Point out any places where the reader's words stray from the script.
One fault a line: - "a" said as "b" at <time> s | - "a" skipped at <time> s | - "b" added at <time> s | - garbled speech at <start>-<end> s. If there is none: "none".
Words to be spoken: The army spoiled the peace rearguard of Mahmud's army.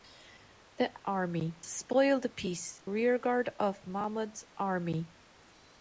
none